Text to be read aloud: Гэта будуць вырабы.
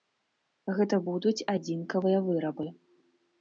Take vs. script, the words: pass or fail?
fail